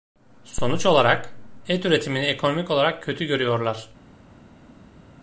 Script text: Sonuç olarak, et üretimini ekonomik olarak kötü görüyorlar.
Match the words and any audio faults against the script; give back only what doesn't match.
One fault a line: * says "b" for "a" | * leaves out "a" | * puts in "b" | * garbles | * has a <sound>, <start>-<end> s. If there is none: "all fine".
all fine